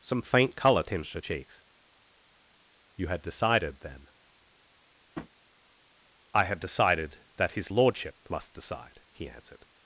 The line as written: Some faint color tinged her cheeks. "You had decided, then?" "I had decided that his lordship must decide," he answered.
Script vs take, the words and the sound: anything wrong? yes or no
yes